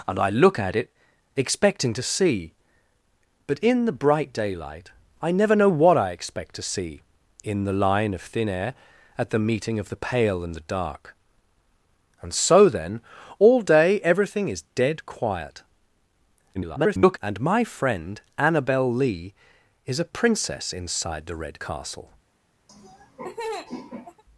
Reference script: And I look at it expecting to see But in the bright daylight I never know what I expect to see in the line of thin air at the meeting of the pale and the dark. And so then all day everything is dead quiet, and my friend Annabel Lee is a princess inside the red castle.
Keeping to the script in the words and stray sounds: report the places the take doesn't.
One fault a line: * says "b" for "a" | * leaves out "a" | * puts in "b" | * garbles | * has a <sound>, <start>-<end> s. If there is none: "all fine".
* garbles
* has a laugh, 22.7-24.2 s